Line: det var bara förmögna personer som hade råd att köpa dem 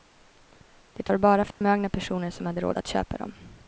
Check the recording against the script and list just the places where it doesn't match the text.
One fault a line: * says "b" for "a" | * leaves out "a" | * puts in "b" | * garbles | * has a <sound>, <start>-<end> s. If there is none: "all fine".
* has a dropout, 1.5-1.6 s